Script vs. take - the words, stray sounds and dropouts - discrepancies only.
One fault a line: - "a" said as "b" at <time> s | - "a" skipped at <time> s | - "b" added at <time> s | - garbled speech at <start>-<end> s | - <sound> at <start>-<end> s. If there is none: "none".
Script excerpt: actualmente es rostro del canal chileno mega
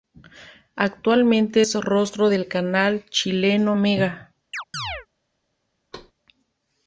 - chirp at 4.5-5.1 s
- thud at 5.9-6.1 s